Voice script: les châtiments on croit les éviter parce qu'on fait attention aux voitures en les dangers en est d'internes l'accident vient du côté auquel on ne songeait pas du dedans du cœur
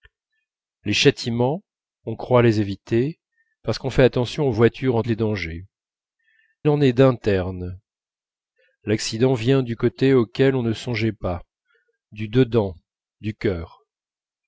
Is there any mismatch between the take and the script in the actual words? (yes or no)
no